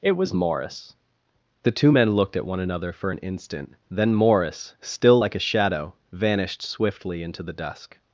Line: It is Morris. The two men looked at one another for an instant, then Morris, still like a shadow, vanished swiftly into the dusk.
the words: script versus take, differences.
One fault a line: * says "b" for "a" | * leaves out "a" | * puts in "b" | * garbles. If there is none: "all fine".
* says "was" for "is"